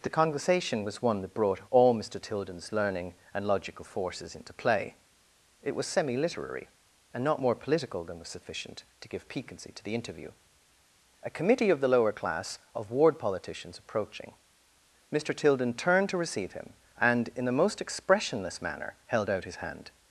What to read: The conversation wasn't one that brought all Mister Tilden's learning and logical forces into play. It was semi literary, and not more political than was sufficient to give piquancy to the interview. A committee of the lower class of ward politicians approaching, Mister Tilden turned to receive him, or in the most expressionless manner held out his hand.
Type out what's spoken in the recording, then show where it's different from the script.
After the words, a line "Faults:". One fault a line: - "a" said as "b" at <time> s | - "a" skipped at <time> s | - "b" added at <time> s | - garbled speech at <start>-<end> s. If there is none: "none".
The conversation was one that brought all Mister Tilden's learning and logical forces into play. It was semi literary, and not more political than was sufficient to give piquancy to the interview. A committee of the lower class of ward politicians approaching, Mister Tilden turned to receive him, and in the most expressionless manner held out his hand.
Faults:
- "wasn't" said as "was" at 0.8 s
- "or" said as "and" at 17.0 s